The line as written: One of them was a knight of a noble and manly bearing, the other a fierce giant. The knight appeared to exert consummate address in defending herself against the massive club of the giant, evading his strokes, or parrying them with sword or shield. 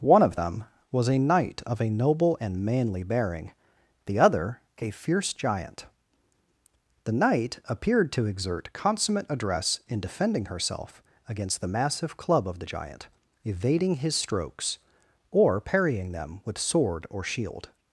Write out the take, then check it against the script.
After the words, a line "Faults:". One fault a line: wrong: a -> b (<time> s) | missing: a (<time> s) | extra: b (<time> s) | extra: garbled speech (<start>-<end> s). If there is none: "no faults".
One of them was a knight of a noble and manly bearing, the other a fierce giant. The knight appeared to exert consummate address in defending herself against the massive club of the giant, evading his strokes, or parrying them with sword or shield.
Faults:
no faults